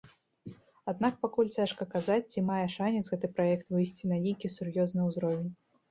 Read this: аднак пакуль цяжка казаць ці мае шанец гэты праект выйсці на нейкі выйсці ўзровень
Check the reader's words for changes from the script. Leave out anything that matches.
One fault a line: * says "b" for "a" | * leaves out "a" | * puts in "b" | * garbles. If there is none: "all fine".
* says "сур'ёзны" for "выйсці"